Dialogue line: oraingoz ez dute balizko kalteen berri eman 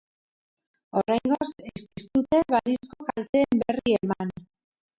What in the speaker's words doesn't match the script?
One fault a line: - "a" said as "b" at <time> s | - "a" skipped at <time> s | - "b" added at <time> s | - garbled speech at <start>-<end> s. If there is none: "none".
- "ez" added at 1.9 s